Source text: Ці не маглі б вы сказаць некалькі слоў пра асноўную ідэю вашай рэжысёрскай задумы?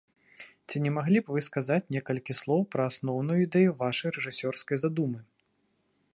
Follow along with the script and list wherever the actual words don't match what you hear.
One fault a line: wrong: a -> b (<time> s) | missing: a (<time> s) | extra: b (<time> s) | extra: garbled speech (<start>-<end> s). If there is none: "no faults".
no faults